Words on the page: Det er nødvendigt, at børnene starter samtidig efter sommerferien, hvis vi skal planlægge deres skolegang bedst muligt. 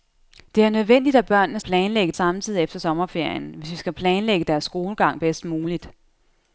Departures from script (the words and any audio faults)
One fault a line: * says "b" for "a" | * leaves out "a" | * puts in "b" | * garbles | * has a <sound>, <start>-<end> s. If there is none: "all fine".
* says "planlægge" for "starter"